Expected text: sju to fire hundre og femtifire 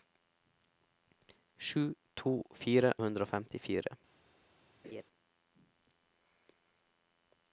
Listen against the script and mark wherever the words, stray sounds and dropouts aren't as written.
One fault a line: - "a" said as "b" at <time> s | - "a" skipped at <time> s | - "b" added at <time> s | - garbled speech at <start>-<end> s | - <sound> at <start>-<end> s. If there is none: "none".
- laugh at 4.8-5.0 s